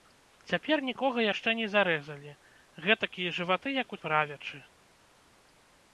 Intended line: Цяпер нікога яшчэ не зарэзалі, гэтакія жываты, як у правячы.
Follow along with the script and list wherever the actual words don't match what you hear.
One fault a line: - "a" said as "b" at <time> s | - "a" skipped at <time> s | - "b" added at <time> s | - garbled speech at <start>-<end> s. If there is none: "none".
none